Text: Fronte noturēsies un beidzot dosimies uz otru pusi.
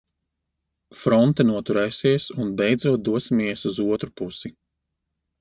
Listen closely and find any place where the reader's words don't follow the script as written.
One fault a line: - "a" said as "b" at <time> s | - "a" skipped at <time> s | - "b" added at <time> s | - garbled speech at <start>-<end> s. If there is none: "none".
none